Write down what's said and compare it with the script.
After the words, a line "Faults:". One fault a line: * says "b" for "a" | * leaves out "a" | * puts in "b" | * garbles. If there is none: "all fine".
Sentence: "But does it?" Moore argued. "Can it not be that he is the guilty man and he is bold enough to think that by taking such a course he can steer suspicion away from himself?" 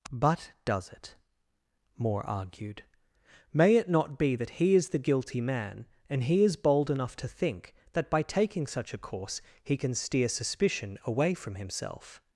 "But does it?" Moore argued. "May it not be that he is the guilty man and he is bold enough to think that by taking such a course he can steer suspicion away from himself?"
Faults:
* says "May" for "Can"